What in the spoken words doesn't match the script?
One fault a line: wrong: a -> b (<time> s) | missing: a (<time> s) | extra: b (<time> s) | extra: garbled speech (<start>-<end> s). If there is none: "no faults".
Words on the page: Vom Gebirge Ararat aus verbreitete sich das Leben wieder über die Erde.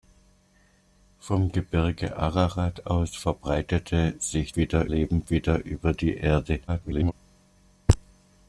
wrong: das -> wieder (4.5 s)
extra: garbled speech (6.7-7.1 s)